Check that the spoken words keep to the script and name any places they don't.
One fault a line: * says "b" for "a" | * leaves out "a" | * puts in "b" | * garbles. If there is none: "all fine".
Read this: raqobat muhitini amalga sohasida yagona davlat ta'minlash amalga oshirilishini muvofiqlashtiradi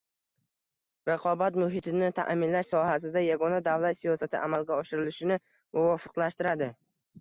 * says "ta'minlash" for "amalga"
* says "siyosati" for "ta'minlash"